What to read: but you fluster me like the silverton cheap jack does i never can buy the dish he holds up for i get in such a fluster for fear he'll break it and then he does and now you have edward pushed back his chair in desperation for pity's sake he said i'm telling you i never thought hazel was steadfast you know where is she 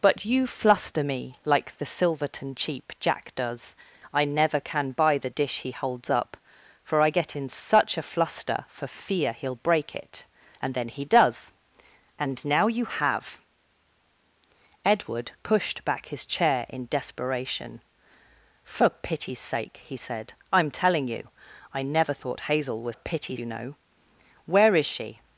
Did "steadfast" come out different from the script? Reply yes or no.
yes